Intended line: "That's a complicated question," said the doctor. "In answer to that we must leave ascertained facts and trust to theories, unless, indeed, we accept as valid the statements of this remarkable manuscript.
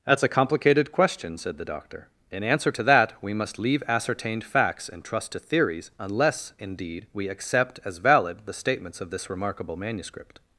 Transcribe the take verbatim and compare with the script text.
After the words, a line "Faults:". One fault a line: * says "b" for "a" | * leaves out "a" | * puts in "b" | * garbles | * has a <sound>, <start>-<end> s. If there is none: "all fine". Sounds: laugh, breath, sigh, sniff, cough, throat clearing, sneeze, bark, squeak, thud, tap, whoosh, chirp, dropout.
"That's a complicated question," said the doctor. "In answer to that we must leave ascertained facts and trust to theories, unless, indeed, we accept as valid the statements of this remarkable manuscript.
Faults:
all fine